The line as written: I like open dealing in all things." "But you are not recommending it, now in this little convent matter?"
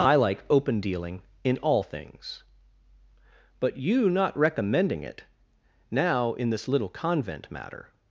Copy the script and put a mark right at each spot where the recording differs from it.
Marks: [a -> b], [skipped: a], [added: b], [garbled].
I like open dealing in all things." "But you [skipped: are] not recommending it, now in this little convent matter?"